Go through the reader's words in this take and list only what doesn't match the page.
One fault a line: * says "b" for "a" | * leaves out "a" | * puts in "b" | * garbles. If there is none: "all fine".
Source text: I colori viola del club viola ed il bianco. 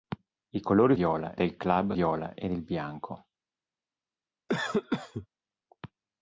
all fine